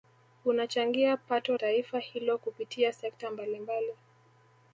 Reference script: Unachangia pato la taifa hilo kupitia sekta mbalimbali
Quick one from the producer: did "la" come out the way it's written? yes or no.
no